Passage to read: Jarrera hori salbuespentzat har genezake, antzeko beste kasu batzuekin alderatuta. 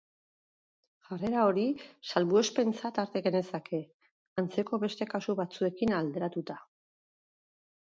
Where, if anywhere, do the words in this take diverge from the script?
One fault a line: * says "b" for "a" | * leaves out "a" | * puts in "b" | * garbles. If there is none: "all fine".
all fine